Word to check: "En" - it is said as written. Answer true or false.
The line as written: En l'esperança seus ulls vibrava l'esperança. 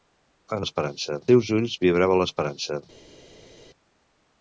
true